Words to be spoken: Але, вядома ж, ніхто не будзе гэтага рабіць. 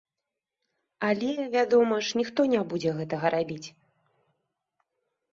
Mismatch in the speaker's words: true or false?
false